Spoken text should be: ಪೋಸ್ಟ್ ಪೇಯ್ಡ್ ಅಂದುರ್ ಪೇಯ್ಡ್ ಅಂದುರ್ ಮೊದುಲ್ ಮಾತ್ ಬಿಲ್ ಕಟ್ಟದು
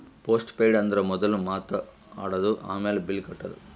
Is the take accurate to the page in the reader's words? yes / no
no